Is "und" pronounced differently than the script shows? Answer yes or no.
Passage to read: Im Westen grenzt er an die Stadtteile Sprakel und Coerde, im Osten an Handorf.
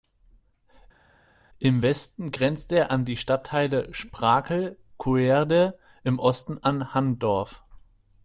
yes